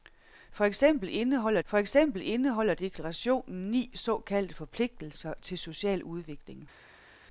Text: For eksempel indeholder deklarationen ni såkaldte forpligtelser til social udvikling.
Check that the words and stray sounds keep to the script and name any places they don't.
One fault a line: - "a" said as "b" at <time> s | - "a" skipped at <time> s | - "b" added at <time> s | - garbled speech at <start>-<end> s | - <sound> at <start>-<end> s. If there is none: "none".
- "for eksempel indeholder" added at 1.6 s